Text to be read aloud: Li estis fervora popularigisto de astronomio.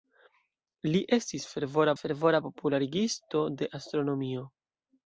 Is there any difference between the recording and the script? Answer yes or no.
yes